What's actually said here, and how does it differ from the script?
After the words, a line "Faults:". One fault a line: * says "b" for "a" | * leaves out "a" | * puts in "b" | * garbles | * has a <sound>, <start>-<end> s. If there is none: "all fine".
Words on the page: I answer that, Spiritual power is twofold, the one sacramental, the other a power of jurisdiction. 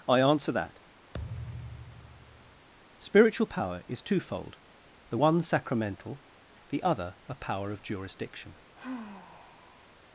I answer that, Spiritual power is twofold, the one sacramental, the other a power of jurisdiction.
Faults:
* has a thud, 1.1-2.7 s
* has a sigh, 8.8-9.9 s